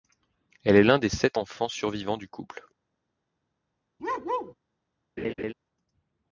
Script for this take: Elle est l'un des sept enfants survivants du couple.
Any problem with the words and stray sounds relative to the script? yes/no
yes